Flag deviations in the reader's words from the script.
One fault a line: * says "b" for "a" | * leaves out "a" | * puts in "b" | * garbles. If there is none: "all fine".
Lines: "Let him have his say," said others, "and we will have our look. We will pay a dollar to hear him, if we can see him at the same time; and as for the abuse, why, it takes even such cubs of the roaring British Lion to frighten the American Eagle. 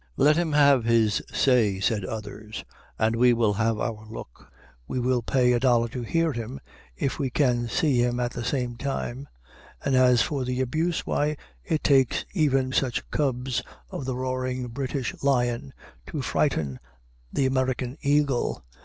all fine